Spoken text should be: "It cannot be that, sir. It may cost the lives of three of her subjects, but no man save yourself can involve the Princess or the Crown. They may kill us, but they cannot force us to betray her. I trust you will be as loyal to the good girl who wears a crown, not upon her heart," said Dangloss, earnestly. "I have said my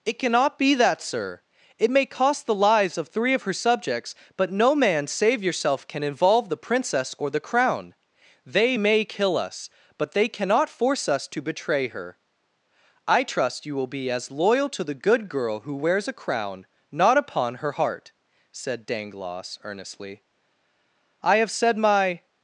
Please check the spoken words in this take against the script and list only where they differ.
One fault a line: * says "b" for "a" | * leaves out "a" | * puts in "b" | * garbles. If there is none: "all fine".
all fine